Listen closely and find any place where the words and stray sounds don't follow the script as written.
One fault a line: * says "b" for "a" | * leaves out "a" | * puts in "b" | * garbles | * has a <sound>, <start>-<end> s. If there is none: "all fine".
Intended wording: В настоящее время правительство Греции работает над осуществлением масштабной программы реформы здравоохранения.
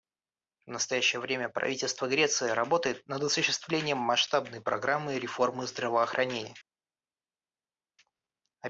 all fine